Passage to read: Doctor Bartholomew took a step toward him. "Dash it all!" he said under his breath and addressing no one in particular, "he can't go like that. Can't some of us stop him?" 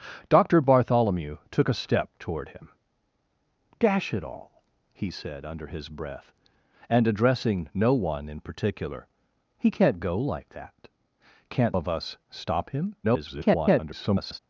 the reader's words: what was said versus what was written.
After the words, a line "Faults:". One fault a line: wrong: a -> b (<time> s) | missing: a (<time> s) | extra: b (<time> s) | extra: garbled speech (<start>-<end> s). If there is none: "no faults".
Doctor Bartholomew took a step toward him. "Dash it all!" he said under his breath and addressing no one in particular, "he can't go like that. Can't of us stop him?" [garbled]
Faults:
missing: some (11.8 s)
extra: garbled speech (13.0-14.4 s)